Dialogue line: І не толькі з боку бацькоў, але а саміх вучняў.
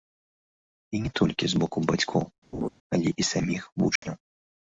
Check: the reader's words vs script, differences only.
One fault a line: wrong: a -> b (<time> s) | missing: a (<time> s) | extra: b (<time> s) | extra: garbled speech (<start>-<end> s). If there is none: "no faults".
wrong: а -> і (3.2 s)